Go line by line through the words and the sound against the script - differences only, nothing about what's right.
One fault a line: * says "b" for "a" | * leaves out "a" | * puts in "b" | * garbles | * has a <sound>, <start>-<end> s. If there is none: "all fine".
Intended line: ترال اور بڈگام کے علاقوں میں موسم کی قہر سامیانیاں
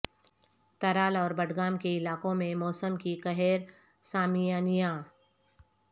all fine